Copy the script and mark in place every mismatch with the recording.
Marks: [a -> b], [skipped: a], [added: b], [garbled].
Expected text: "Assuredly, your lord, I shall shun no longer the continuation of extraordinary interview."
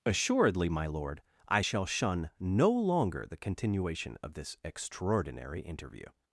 "Assuredly, [your -> my] lord, I shall shun no longer the continuation of [added: this] extraordinary interview."